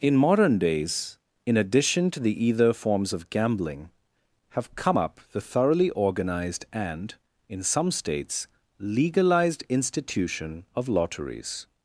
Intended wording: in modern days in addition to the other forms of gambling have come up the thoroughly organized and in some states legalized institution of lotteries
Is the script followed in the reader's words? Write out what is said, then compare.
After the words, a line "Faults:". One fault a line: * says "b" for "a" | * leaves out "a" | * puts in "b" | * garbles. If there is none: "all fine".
in modern days in addition to the either forms of gambling have come up the thoroughly organized and in some states legalized institution of lotteries
Faults:
* says "either" for "other"